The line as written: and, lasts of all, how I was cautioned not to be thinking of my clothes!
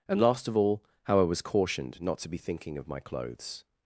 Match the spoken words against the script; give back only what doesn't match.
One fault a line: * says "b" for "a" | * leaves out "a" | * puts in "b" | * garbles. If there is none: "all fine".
* says "last" for "lasts"